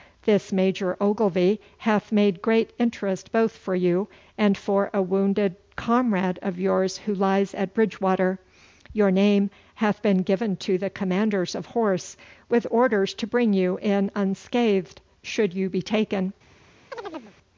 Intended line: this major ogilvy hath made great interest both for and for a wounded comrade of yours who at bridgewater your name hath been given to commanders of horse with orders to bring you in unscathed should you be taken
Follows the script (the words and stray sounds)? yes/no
no